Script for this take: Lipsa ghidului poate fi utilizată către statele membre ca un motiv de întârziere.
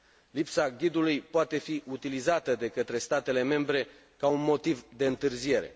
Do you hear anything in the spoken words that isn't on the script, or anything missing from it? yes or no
yes